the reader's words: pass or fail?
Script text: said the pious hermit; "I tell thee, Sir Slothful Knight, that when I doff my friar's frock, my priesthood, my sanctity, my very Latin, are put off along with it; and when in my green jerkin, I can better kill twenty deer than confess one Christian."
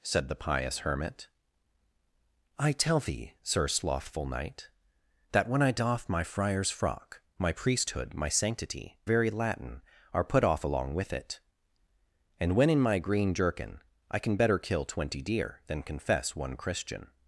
fail